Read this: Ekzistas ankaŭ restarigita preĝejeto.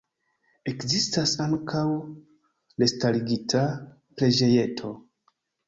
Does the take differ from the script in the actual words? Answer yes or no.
no